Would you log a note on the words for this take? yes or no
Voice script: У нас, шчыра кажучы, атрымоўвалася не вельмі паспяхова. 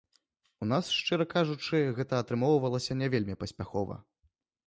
yes